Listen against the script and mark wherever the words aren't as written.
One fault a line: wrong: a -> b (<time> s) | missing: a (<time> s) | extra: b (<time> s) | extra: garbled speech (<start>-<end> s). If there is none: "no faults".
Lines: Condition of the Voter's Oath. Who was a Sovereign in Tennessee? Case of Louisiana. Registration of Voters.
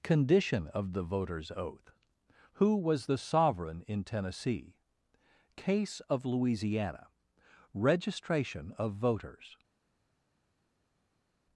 wrong: a -> the (3.0 s)